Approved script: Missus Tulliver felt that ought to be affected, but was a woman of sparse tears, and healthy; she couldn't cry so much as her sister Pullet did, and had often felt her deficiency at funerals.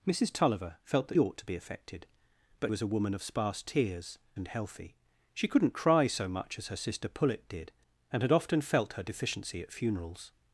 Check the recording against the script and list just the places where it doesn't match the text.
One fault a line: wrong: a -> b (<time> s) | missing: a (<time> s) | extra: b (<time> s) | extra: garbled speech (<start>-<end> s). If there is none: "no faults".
no faults